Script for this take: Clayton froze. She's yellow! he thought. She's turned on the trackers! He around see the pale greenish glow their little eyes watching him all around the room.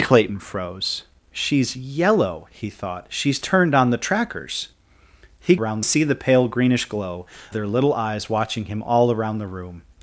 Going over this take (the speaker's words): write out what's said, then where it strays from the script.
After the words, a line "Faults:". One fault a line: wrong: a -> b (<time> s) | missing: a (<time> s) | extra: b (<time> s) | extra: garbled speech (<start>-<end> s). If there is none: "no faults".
Clayton froze. She's yellow! he thought. She's turned on the trackers! He around see the pale greenish glow their little eyes watching him all around the room.
Faults:
no faults